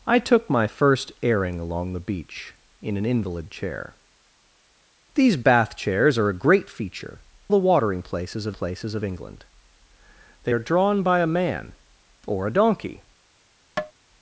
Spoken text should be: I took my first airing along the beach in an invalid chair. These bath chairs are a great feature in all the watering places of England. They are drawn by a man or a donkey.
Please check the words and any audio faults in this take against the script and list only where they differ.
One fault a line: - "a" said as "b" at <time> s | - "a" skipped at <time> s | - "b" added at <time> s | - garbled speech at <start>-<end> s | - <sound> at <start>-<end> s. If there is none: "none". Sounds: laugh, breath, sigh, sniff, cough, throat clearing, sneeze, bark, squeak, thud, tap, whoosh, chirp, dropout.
- "in all the watering" said as "the watering places of" at 7.5 s
- tap at 13.8-13.9 s